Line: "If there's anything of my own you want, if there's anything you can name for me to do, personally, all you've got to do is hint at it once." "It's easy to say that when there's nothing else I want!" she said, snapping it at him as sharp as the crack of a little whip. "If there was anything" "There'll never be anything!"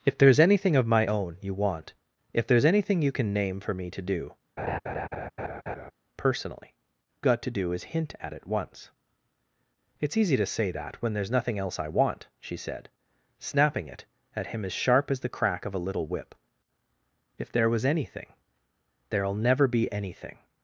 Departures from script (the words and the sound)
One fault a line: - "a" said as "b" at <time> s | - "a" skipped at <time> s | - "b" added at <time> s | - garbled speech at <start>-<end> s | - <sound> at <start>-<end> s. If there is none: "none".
- laugh at 4.6-5.9 s
- "all you've" skipped at 6.8 s